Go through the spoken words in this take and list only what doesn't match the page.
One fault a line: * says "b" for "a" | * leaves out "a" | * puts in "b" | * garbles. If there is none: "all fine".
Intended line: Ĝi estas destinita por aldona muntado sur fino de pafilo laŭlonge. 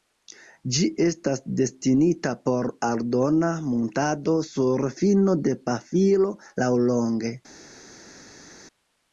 all fine